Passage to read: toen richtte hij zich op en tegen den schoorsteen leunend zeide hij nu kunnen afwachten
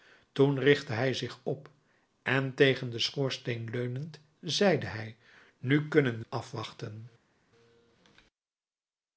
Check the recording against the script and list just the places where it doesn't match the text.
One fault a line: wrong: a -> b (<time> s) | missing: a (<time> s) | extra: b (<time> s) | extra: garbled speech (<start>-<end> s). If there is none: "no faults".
no faults